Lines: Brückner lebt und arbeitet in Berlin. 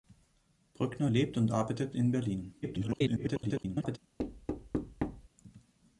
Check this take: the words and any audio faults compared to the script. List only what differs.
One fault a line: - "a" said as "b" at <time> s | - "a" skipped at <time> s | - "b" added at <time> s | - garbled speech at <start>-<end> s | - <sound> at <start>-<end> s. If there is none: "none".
- garbled speech at 2.6-4.0 s
- thud at 4.2-5.3 s